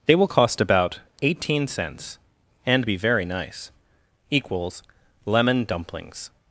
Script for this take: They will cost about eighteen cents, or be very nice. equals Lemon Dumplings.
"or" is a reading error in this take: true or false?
true